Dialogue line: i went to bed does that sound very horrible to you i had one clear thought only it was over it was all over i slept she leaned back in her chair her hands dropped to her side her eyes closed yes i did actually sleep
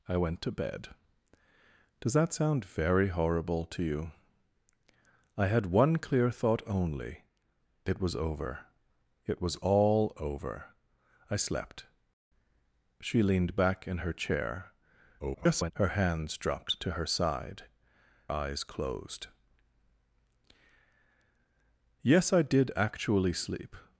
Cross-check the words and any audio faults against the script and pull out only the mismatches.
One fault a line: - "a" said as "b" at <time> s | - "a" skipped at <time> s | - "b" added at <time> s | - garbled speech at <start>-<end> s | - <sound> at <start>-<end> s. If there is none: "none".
- garbled speech at 15.2-15.7 s
- "her" skipped at 17.6 s